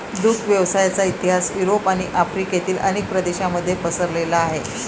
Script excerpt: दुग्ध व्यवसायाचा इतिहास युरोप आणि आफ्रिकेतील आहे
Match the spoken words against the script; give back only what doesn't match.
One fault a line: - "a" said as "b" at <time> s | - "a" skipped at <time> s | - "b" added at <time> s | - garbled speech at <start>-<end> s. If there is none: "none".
- "अनेक प्रदेशांमध्ये पसरलेला" added at 2.8 s